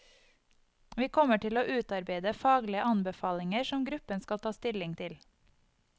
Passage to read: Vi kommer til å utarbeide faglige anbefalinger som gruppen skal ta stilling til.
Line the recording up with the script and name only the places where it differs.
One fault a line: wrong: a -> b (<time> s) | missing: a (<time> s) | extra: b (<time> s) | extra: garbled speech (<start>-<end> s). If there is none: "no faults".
no faults